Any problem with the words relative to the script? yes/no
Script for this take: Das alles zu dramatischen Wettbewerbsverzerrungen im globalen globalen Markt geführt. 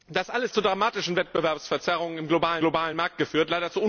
no